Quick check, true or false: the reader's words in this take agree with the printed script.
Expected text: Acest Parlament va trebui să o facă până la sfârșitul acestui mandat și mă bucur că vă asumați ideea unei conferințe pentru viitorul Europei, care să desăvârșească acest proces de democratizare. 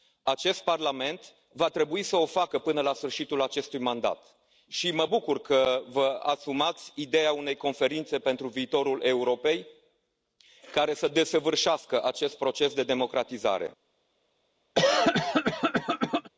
true